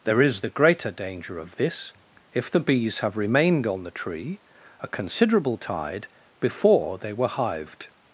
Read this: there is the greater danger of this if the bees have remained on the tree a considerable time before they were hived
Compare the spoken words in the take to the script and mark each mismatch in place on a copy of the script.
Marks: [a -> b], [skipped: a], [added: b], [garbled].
there is the greater danger of this if the bees have remained on the tree a considerable [time -> tide] before they were hived